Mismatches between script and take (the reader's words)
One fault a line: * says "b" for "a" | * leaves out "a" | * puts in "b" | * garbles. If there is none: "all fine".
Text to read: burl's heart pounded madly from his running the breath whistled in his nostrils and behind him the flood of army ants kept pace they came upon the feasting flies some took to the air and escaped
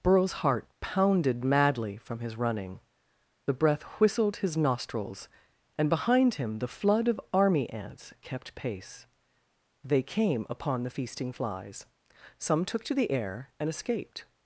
* leaves out "in"